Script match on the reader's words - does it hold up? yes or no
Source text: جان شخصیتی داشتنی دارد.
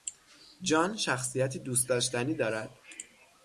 no